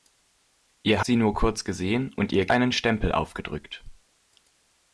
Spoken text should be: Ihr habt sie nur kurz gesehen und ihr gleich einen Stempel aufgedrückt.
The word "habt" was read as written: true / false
false